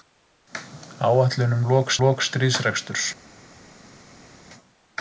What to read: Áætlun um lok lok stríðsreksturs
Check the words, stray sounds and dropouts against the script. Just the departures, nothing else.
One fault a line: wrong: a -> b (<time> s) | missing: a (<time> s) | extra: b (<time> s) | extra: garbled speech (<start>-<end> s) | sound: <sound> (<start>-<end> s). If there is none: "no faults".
no faults